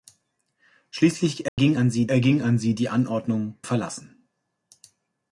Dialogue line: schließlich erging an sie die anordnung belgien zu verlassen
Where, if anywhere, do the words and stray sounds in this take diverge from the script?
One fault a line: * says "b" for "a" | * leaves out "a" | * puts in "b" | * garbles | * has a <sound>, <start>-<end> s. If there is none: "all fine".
* has a dropout, 1.5-1.6 s
* puts in "erging an sie"
* leaves out "belgien zu"